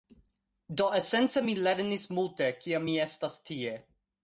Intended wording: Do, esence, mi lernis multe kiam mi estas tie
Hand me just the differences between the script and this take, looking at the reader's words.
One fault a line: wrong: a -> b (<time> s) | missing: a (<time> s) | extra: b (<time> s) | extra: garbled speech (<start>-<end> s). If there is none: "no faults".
no faults